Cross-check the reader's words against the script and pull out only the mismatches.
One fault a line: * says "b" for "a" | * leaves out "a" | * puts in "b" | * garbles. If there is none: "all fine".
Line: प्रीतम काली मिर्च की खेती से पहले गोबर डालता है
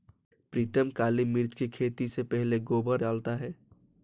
all fine